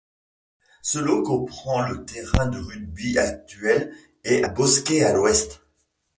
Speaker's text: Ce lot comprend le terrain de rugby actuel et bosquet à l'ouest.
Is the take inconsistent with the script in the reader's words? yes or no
no